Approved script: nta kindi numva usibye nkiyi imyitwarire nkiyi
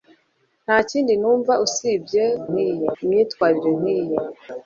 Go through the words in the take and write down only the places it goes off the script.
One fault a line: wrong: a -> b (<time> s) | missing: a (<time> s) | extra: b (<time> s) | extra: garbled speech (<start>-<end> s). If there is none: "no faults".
no faults